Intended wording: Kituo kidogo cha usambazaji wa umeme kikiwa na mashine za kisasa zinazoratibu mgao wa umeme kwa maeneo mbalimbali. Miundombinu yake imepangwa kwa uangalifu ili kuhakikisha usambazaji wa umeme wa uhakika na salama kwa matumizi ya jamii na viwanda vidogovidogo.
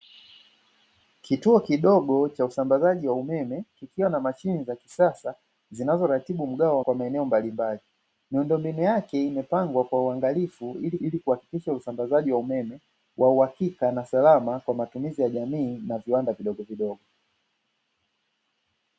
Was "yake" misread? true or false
false